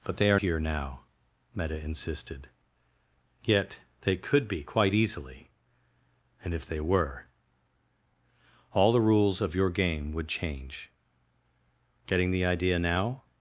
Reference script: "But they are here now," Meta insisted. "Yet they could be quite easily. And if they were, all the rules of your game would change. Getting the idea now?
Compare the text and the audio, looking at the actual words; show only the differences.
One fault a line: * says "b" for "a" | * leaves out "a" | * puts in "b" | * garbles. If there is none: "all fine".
all fine